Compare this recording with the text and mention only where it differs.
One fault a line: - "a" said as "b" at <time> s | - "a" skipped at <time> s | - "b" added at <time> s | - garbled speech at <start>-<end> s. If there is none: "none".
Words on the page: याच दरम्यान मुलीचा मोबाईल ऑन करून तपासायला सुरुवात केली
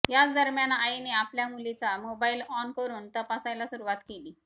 - "आईने आपल्या" added at 0.7 s